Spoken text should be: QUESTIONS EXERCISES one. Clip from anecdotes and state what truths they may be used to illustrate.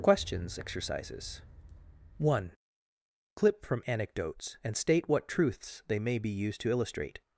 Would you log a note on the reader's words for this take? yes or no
no